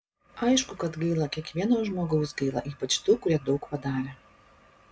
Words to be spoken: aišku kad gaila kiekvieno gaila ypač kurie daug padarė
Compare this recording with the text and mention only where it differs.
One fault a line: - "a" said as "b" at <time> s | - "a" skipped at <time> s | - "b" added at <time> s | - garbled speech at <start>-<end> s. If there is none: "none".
- "žmogaus" added at 1.9 s
- "tų" added at 3.1 s